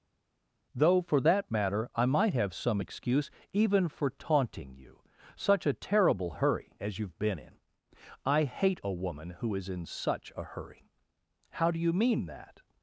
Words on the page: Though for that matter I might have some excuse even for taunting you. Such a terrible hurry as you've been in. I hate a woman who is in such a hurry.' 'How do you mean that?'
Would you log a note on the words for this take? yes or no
no